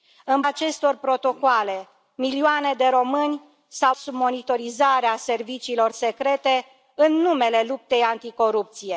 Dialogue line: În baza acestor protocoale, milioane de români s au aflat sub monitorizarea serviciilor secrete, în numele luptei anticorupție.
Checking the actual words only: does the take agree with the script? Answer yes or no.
no